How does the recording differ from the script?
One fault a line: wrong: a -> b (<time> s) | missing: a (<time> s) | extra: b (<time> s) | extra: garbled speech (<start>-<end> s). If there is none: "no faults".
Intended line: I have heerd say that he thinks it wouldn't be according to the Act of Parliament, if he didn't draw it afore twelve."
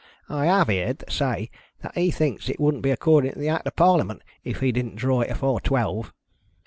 no faults